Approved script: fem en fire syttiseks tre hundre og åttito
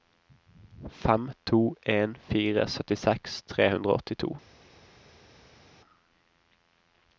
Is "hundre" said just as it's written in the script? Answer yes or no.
yes